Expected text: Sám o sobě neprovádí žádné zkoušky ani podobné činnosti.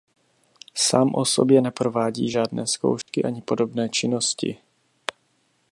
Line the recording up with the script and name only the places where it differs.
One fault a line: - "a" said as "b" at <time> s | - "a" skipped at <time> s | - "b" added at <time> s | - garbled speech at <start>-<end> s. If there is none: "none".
none